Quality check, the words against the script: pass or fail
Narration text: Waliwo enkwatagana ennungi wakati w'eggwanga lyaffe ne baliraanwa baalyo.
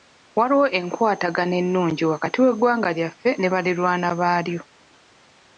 pass